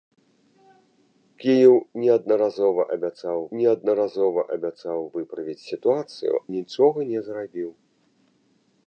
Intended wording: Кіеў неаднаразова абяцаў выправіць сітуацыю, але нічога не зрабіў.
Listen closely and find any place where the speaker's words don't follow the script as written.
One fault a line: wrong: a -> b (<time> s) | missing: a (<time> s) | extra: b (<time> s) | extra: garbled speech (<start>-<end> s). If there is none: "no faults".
extra: неаднаразова абяцаў (3.6 s)
missing: але (6.3 s)